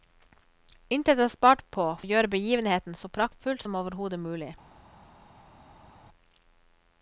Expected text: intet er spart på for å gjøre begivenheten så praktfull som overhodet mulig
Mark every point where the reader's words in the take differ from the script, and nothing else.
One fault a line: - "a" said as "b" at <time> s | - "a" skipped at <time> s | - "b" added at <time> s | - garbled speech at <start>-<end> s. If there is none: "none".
- "for" skipped at 1.9 s